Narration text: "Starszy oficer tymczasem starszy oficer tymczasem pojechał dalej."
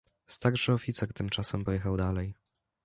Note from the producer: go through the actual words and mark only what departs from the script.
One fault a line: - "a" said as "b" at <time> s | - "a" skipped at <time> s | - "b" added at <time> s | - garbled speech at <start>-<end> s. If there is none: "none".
- "starszy oficer tymczasem" skipped at 1.6 s